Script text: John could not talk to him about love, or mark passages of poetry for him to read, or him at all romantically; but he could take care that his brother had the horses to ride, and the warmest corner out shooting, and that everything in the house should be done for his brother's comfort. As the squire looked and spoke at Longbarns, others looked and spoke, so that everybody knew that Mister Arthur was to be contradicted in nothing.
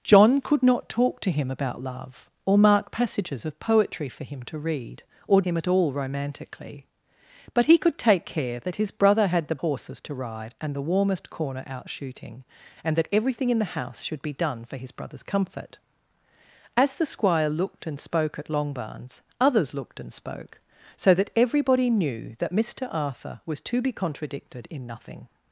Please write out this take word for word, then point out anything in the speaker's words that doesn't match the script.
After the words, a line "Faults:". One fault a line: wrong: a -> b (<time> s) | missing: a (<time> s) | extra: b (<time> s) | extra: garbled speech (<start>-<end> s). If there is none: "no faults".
John could not talk to him about love, or mark passages of poetry for him to read, or him at all romantically; but he could take care that his brother had the horses to ride, and the warmest corner out shooting, and that everything in the house should be done for his brother's comfort. As the squire looked and spoke at Longbarns, others looked and spoke, so that everybody knew that Mister Arthur was to be contradicted in nothing.
Faults:
no faults